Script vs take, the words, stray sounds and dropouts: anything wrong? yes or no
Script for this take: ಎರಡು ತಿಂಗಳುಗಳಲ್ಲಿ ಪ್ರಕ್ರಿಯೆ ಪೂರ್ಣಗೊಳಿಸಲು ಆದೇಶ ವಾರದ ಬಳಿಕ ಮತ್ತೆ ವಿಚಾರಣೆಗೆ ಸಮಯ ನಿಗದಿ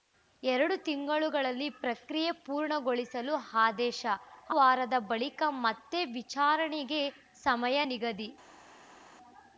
no